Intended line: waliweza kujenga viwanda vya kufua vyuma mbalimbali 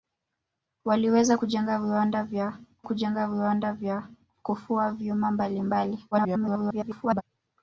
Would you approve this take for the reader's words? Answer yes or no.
no